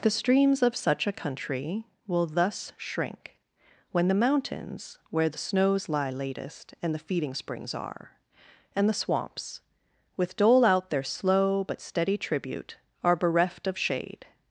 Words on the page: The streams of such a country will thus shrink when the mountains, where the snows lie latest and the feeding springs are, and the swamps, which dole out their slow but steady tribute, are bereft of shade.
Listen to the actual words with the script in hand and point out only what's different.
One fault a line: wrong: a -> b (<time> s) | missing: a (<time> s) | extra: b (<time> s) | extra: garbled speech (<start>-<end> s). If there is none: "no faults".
wrong: which -> with (10.2 s)